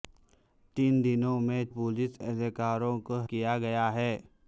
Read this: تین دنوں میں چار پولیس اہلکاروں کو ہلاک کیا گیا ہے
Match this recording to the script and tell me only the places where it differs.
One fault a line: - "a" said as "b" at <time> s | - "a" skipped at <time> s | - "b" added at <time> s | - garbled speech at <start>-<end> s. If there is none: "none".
- "چار" skipped at 1.6 s
- "ہلاک" skipped at 3.2 s